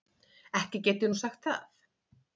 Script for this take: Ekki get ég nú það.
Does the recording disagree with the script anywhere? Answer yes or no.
yes